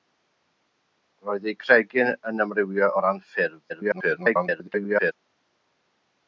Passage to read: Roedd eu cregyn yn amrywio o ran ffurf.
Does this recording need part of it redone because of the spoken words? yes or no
yes